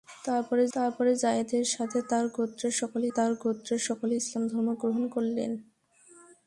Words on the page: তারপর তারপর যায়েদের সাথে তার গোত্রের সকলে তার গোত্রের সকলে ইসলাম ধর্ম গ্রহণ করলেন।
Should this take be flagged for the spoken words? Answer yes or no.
no